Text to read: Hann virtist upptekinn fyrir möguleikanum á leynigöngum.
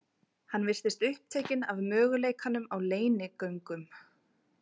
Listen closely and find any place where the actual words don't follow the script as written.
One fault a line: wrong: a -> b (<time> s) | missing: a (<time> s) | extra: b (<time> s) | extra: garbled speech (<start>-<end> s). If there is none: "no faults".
wrong: fyrir -> af (1.7 s)